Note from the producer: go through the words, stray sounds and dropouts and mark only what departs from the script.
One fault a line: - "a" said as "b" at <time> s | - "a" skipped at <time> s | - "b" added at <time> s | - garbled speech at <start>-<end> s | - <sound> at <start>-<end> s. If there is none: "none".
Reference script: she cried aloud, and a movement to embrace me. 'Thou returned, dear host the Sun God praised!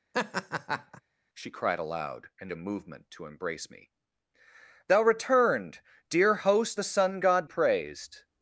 - laugh at 0.1-1.0 s